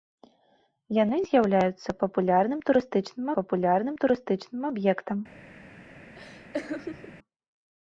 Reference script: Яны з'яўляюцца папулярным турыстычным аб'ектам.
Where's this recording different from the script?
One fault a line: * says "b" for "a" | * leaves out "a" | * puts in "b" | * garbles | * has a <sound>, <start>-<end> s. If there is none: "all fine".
* puts in "папулярным турыстычным"
* has a laugh, 6.1-7.2 s